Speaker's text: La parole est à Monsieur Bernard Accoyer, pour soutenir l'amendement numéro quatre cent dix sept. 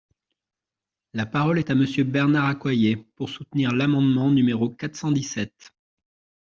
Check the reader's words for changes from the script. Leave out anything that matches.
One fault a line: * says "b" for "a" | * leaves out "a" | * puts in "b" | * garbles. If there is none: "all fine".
all fine